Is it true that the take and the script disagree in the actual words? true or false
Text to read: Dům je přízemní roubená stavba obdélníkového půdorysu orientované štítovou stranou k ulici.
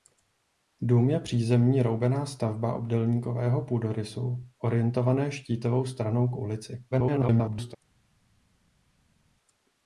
true